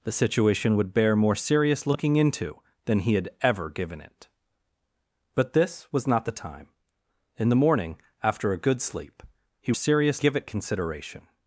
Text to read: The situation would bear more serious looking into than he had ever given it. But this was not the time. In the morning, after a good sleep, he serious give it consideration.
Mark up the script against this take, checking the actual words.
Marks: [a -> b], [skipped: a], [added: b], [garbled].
The situation would bear more serious looking into than he had ever given it. But this was not the time. In the morning, after a good sleep, he serious give it consideration.